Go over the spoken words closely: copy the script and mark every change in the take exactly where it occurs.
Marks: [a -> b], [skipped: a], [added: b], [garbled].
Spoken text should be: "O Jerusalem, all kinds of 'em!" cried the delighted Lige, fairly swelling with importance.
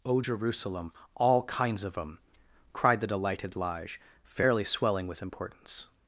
"O Jerusalem, all kinds of 'em!" cried the delighted Lige, fairly swelling with importance.